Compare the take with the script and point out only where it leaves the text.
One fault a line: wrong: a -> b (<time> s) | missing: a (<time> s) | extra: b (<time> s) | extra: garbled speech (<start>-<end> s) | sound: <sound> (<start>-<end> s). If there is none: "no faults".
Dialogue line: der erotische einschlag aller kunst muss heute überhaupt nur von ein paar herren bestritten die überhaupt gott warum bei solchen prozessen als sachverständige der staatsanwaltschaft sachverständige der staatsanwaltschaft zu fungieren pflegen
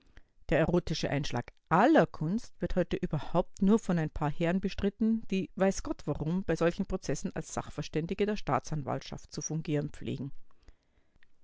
wrong: muss -> wird (2.6 s)
wrong: überhaupt -> weiß (5.6 s)
missing: sachverständige der staatsanwaltschaft (9.3 s)